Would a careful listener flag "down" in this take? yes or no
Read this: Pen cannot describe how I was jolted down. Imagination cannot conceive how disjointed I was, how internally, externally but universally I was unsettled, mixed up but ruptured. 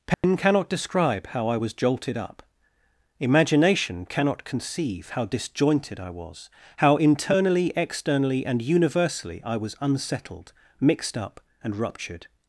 yes